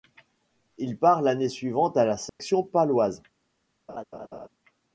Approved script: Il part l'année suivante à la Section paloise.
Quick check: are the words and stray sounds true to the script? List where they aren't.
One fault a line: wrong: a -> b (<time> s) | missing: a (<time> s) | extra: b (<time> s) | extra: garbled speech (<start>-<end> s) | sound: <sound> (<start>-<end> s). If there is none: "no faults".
sound: dropout (2.3-2.4 s)
sound: laugh (3.9-4.5 s)